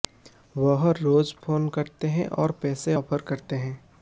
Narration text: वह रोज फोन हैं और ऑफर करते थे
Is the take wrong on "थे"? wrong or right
wrong